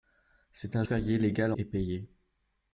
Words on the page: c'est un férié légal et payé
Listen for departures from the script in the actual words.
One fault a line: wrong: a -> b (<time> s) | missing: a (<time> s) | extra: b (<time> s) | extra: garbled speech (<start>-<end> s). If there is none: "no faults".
no faults